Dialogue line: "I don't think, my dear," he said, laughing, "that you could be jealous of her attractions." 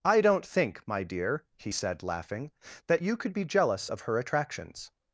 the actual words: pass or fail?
pass